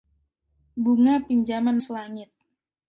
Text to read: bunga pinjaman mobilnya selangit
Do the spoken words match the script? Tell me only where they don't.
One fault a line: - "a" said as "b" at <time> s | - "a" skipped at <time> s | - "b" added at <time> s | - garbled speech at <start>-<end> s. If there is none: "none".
- "mobilnya" skipped at 1.8 s